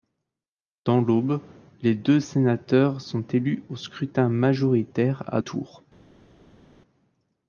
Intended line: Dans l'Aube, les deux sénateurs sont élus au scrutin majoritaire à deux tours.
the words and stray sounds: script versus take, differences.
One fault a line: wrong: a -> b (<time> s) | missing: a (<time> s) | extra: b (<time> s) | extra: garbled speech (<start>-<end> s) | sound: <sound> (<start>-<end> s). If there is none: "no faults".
missing: deux (5.4 s)